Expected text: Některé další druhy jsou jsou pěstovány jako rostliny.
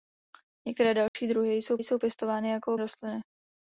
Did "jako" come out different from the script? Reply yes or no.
no